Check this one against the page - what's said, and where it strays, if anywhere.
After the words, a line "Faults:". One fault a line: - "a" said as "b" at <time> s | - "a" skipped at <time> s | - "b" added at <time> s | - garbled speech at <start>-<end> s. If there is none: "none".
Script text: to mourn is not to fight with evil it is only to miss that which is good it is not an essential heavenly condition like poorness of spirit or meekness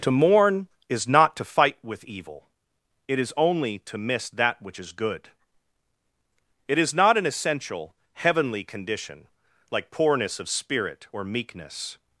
to mourn is not to fight with evil it is only to miss that which is good it is not an essential heavenly condition like poorness of spirit or meekness
Faults:
none